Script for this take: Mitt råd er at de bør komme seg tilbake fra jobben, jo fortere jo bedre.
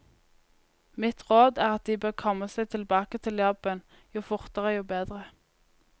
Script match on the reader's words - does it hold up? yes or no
no